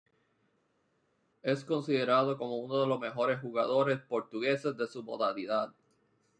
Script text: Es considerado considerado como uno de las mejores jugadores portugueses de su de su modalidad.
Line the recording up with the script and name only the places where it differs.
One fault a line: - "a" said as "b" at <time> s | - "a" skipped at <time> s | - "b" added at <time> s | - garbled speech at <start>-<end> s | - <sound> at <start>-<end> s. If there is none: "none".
- "considerado" skipped at 2.4 s
- "las" said as "los" at 2.9 s
- "de su" skipped at 5.0 s